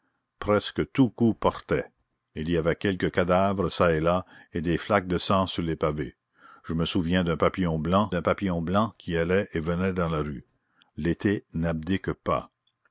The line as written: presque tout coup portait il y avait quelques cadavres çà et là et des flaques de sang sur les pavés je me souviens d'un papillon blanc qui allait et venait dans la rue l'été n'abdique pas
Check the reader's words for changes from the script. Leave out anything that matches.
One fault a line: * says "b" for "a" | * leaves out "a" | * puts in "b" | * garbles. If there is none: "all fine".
* puts in "d'un papillon blanc"